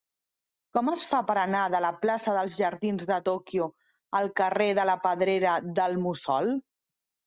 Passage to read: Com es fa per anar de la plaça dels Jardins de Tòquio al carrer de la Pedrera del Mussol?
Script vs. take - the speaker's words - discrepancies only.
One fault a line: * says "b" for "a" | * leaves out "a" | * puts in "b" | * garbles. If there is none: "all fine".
all fine